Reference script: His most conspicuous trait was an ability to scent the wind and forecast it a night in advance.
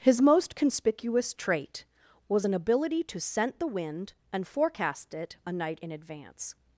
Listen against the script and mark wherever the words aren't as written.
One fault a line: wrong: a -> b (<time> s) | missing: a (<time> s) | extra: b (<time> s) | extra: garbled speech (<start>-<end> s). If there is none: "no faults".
no faults